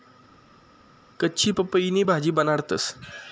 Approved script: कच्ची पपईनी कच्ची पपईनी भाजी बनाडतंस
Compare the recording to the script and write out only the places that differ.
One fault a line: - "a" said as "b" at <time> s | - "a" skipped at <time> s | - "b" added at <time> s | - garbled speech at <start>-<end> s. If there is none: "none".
- "कच्ची पपईनी" skipped at 2.0 s